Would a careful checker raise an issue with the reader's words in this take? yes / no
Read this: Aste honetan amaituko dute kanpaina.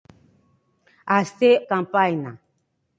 yes